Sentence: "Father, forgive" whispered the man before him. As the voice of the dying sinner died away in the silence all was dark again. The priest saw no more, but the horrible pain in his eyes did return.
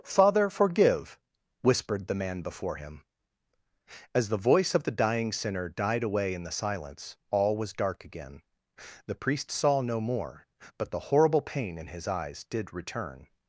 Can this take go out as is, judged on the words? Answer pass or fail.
pass